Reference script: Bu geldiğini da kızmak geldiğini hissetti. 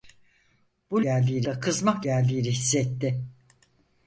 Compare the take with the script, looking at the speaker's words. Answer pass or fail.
pass